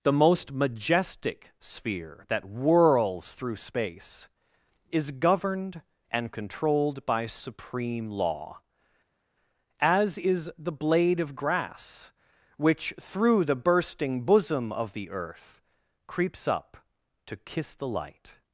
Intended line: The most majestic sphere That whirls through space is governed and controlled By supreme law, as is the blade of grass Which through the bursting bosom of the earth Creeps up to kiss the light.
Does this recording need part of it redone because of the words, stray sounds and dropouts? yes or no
no